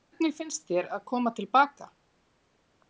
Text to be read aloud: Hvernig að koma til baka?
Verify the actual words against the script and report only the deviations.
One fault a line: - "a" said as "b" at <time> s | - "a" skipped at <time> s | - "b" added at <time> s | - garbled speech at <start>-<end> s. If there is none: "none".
- "finnst þér" added at 0.4 s